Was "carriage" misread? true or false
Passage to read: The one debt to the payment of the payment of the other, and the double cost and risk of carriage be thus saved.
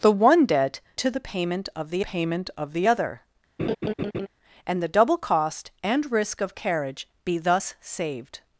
false